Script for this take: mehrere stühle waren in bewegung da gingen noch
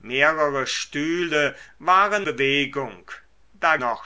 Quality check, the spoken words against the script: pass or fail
fail